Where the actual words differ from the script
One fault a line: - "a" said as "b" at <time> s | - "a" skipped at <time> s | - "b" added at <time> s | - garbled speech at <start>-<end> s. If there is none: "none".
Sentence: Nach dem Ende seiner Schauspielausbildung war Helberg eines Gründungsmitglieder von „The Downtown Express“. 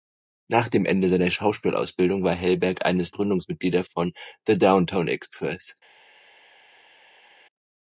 none